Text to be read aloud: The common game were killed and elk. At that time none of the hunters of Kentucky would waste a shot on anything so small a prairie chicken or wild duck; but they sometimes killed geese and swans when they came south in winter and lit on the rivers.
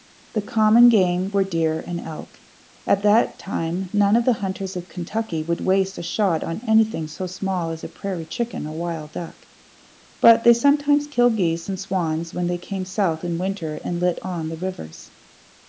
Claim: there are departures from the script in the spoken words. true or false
true